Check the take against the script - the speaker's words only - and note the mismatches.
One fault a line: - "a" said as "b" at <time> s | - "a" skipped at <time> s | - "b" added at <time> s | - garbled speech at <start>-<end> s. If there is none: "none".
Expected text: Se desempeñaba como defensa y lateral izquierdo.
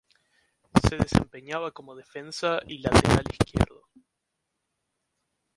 none